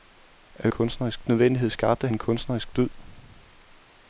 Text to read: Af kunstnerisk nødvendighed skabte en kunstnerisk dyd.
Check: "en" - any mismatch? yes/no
no